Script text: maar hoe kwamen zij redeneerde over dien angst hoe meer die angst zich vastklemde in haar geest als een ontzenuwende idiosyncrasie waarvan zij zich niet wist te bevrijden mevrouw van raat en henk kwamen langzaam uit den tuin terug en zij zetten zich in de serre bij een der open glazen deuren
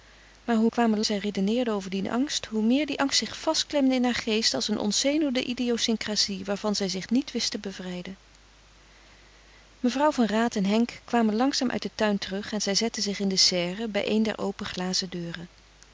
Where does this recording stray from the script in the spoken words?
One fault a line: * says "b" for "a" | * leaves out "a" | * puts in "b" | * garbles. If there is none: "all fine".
all fine